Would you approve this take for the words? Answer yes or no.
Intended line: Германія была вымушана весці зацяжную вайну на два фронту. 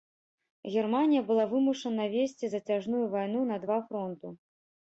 yes